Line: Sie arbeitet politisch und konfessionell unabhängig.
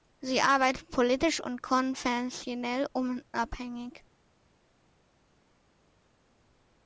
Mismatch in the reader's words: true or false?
false